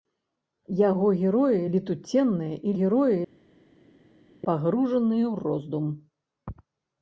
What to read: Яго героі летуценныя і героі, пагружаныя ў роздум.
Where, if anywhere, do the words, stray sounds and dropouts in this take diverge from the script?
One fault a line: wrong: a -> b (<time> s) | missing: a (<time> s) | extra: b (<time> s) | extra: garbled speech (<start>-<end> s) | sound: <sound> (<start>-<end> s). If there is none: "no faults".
no faults